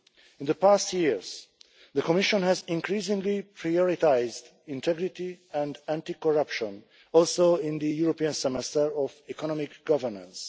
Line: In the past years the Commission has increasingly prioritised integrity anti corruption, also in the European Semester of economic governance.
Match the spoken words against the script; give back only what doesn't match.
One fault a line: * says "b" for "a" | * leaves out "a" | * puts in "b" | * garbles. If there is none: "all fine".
* puts in "and"